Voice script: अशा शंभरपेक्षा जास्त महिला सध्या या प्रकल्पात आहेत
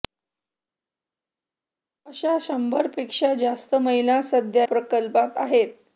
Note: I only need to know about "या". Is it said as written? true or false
false